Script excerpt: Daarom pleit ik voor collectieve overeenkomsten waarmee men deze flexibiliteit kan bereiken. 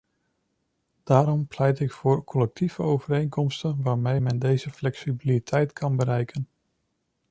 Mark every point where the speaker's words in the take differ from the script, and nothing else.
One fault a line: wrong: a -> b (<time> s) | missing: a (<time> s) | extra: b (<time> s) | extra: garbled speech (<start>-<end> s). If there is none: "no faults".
no faults